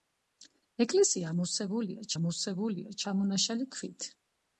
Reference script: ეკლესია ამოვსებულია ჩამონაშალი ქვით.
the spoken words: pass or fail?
fail